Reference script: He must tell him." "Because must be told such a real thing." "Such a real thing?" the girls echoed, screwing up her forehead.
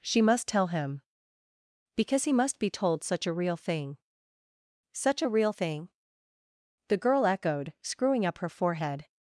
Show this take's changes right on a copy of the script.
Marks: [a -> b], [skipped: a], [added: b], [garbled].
[He -> She] must tell him." "Because [added: he] must be told such a real thing." "Such a real thing?" the [girls -> girl] echoed, screwing up her forehead.